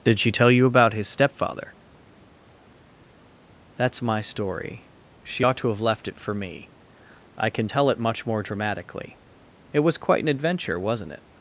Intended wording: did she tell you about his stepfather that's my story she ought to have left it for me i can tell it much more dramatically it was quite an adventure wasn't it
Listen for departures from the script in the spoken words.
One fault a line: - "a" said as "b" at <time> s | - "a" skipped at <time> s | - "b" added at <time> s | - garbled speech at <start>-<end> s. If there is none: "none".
none